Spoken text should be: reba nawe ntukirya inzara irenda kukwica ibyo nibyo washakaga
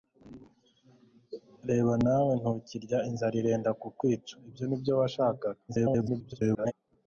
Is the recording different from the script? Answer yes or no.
yes